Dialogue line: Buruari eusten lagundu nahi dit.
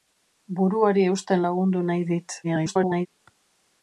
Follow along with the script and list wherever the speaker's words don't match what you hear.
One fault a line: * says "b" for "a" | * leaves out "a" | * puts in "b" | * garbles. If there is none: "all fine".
* garbles